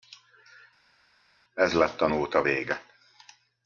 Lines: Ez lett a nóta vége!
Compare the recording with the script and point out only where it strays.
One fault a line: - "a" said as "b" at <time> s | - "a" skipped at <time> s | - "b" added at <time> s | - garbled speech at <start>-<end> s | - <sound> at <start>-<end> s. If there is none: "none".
none